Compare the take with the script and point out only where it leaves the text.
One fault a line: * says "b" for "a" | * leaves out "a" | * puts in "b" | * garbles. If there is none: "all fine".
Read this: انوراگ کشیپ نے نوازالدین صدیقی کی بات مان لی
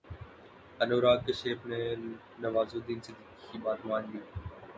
all fine